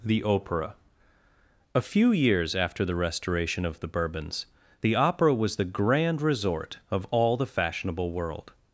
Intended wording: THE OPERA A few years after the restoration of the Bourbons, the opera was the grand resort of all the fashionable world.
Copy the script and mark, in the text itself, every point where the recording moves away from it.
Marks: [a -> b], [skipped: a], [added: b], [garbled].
THE OPERA A few years after the restoration of the Bourbons, the opera was the grand resort of all the fashionable world.